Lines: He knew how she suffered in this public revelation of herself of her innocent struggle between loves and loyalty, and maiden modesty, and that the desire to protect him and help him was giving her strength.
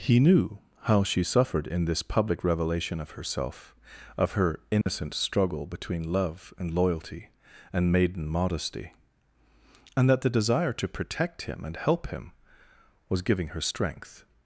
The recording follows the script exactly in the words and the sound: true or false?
false